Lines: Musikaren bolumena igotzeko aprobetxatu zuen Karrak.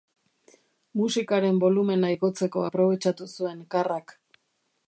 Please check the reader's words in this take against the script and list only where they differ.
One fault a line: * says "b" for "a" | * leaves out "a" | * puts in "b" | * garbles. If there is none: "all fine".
all fine